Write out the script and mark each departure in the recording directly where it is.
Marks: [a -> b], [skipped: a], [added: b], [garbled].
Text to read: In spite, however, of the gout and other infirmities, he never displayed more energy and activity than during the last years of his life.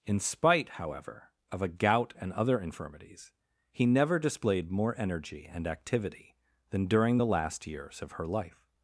In spite, however, of [the -> a] gout and other infirmities, he never displayed more energy and activity than during the last years of [his -> her] life.